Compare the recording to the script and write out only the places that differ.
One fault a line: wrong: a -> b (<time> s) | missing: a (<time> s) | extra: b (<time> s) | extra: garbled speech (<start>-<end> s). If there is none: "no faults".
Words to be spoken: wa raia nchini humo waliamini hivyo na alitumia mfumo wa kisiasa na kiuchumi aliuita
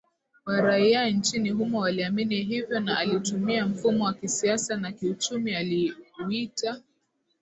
no faults